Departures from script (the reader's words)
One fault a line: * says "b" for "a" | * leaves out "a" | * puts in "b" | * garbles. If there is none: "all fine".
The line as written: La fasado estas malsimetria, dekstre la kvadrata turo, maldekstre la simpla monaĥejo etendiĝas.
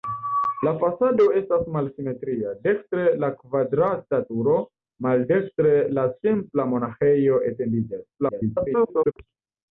* garbles